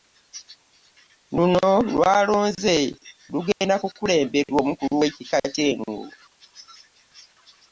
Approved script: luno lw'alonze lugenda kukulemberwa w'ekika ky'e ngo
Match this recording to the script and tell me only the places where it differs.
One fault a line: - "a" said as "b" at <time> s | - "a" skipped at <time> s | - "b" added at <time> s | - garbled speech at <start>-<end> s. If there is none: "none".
- "omukulu" added at 4.6 s